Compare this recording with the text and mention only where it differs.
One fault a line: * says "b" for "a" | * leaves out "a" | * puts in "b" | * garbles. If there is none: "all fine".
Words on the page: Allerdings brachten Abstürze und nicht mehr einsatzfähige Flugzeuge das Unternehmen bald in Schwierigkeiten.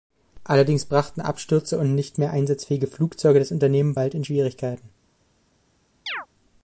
all fine